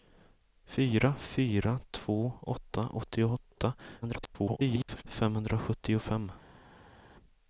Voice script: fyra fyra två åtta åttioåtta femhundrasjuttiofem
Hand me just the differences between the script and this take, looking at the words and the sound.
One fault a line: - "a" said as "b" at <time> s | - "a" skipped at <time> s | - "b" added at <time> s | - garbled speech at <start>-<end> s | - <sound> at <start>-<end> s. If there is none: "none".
- garbled speech at 4.0-5.0 s